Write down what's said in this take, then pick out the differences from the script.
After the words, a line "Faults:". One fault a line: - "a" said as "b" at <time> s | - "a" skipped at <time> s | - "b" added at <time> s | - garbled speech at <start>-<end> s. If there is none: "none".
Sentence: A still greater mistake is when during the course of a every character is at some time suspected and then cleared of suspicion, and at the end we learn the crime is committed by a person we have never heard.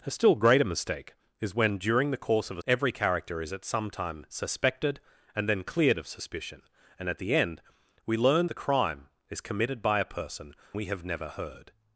A still greater mistake is when during the course of a every character is at some time suspected and then cleared of suspicion, and at the end we learn the crime is committed by a person we have never heard.
Faults:
none